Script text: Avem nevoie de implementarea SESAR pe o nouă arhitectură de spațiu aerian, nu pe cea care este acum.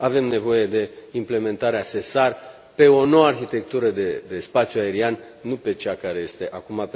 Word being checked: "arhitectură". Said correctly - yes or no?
yes